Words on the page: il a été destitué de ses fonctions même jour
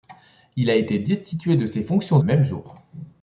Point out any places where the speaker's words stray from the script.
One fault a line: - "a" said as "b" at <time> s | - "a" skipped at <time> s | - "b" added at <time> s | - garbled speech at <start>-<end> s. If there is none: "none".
none